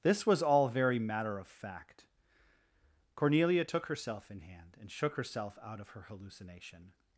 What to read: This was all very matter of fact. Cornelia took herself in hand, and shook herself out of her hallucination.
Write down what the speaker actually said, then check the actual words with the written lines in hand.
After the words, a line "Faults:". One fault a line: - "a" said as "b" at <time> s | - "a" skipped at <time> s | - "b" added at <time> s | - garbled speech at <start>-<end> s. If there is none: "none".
This was all very matter of fact. Cornelia took herself in hand, and shook herself out of her hallucination.
Faults:
none